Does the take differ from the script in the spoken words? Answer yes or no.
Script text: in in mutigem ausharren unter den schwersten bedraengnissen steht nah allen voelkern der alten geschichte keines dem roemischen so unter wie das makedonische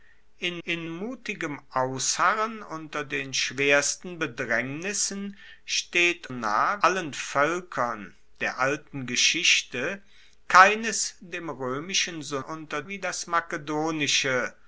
no